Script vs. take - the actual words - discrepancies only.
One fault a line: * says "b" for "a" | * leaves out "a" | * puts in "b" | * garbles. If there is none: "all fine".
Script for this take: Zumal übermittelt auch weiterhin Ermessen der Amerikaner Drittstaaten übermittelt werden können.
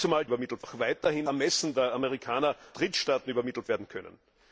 all fine